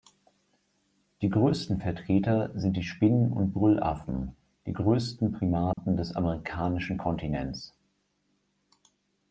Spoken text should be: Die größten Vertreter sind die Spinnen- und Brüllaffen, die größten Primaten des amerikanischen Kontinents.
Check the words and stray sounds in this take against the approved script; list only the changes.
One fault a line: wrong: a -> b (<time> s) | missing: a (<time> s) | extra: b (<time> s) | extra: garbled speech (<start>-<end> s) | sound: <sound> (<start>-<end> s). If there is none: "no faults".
sound: dropout (5.7-5.8 s)